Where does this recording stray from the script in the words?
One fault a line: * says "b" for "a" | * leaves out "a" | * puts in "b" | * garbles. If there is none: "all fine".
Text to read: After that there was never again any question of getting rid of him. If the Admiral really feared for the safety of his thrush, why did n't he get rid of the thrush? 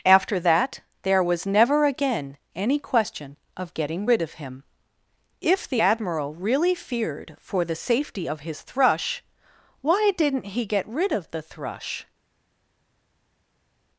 all fine